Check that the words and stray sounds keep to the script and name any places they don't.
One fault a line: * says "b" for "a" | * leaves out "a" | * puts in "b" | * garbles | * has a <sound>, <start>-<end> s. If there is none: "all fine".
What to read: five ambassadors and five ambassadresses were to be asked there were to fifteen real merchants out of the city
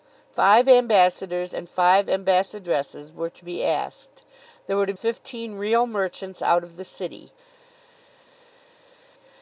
all fine